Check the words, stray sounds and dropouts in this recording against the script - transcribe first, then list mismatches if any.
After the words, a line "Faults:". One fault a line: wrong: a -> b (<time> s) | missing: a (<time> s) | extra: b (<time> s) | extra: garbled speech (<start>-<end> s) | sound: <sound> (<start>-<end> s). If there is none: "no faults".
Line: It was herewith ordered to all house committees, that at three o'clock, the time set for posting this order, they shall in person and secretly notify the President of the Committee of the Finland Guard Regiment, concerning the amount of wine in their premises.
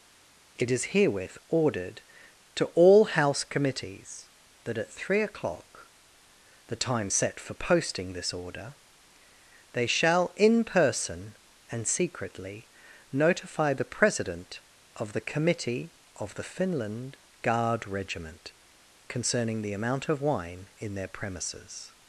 It is herewith ordered to all house committees, that at three o'clock, the time set for posting this order, they shall in person and secretly notify the President of the Committee of the Finland Guard Regiment, concerning the amount of wine in their premises.
Faults:
wrong: was -> is (0.7 s)